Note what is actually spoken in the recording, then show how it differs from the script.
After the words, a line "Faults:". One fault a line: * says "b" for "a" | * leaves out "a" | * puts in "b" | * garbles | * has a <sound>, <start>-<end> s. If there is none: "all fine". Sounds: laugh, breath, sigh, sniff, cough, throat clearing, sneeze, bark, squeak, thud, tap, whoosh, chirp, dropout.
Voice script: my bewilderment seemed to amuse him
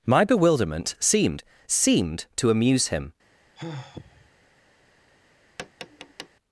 my bewilderment seemed seemed to amuse him
Faults:
* puts in "seemed"
* has a sigh, 3.6-4.3 s
* has a tap, 5.6-6.3 s